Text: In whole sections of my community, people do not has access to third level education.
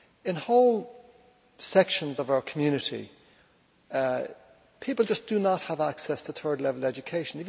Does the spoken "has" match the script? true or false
false